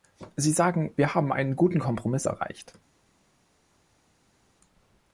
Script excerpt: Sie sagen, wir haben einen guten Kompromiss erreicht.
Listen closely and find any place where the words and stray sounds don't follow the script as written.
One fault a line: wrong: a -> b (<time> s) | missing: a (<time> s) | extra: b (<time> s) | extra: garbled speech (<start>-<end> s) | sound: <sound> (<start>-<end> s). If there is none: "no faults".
no faults